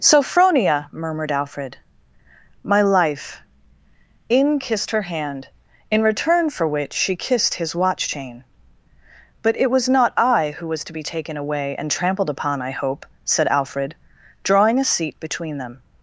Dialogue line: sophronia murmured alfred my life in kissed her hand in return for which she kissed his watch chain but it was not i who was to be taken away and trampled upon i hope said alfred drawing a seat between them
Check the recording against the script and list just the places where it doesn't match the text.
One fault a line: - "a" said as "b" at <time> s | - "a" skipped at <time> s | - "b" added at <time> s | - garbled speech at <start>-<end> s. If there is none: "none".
none